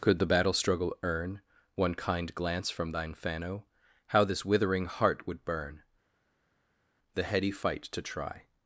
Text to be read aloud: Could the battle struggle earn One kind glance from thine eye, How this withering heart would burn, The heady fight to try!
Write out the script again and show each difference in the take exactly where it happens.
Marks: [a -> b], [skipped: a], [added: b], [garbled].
Could the battle struggle earn One kind glance from thine [eye, -> fano] How this withering heart would burn, The heady fight to try!